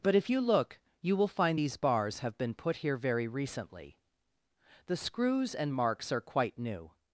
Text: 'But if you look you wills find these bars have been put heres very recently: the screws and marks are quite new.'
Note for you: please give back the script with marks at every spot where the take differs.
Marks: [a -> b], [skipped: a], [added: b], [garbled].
'But if you look you [wills -> will] find these bars have been put [heres -> here] very recently: the screws and marks are quite new.'